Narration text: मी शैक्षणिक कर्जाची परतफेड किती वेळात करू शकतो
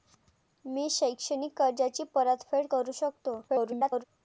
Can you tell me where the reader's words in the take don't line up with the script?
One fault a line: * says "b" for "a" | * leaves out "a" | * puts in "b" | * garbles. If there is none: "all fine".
* leaves out "किती वेळात"
* garbles